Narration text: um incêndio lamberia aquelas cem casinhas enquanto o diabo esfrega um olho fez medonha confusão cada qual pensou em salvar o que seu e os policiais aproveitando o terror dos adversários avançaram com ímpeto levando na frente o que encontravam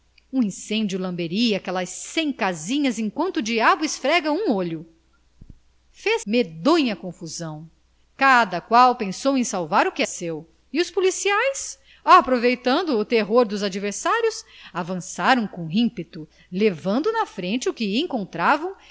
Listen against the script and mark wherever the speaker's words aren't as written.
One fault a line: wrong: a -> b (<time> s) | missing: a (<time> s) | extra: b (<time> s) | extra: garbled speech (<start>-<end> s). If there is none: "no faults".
no faults